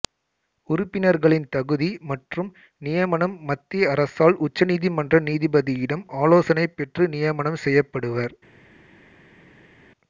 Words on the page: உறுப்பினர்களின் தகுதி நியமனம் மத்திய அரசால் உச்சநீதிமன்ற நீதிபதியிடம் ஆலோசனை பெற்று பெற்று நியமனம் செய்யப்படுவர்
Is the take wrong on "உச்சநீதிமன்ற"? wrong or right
right